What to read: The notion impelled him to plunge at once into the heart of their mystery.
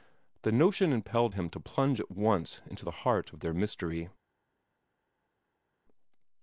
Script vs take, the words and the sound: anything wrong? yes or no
no